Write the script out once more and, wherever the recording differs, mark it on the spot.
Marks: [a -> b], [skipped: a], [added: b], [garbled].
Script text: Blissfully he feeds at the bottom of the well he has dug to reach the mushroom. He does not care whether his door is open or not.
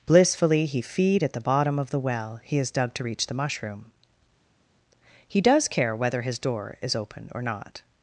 Blissfully he [feeds -> feed] at the bottom of the well he has dug to reach the mushroom. He does [skipped: not] care whether his door is open or not.